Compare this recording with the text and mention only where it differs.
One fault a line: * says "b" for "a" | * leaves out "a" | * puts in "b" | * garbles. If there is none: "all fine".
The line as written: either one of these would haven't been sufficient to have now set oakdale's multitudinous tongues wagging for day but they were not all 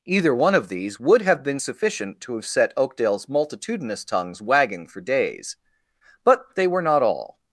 * says "have" for "haven't"
* leaves out "now"
* says "days" for "day"